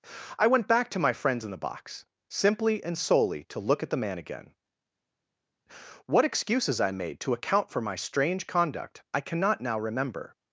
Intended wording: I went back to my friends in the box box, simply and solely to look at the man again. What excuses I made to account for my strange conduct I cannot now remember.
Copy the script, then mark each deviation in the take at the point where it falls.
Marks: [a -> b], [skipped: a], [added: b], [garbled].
I went back to my friends in the box [skipped: box,] simply and solely to look at the man again. What excuses I made to account for my strange conduct I cannot now remember.